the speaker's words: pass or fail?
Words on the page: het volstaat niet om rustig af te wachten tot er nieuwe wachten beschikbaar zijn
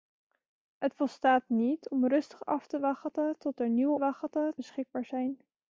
pass